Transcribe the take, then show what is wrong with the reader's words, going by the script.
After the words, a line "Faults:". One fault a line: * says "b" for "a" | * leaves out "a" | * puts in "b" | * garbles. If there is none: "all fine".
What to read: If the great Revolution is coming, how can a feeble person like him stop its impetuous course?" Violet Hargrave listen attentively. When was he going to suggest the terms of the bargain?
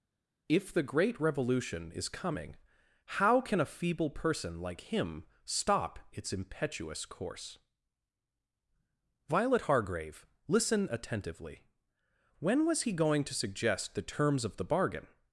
If the great Revolution is coming, how can a feeble person like him stop its impetuous course?" Violet Hargrave listen attentively. When was he going to suggest the terms of the bargain?
Faults:
all fine